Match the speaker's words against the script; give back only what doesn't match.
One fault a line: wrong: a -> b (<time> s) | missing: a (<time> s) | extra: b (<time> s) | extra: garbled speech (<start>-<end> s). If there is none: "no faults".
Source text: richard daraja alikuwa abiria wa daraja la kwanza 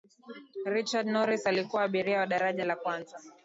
wrong: daraja -> norris (1.1 s)